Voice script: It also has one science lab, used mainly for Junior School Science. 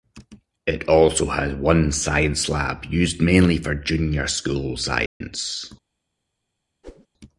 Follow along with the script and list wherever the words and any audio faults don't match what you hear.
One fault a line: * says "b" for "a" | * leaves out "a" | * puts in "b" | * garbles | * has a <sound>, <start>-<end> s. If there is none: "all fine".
* has a dropout, 5.1-5.2 s
* has a whoosh, 6.8-7.1 s